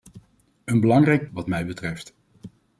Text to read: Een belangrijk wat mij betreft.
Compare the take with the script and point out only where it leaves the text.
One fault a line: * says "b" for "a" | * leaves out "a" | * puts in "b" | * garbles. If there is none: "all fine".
all fine